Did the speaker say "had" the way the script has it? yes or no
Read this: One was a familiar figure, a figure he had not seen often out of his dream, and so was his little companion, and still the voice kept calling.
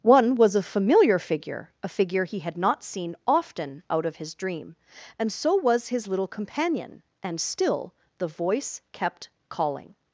yes